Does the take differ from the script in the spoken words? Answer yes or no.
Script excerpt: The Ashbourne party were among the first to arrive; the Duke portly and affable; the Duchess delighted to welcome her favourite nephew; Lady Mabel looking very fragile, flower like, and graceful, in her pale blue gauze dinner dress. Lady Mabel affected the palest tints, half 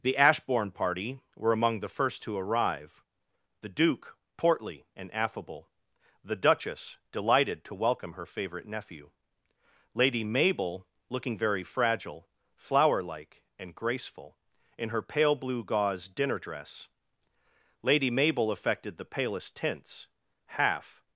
no